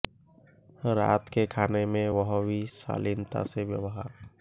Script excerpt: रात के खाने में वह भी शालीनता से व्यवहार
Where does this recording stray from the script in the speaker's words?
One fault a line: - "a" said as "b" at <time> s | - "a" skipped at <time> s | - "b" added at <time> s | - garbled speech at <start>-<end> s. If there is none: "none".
none